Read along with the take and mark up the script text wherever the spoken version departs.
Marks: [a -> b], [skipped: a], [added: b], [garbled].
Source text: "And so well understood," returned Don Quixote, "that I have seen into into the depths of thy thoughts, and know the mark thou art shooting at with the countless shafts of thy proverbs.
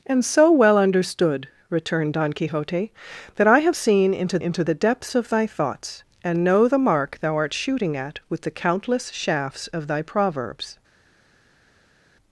"And so well understood," returned Don Quixote, "that I have seen into into the depths of thy thoughts, and know the mark thou art shooting at with the countless shafts of thy proverbs.